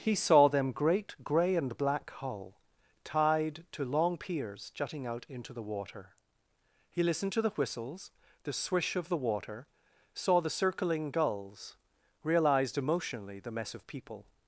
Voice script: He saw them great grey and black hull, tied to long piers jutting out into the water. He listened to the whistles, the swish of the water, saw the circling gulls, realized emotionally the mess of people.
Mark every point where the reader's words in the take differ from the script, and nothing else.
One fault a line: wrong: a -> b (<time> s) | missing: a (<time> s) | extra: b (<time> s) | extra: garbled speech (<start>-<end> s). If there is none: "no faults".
no faults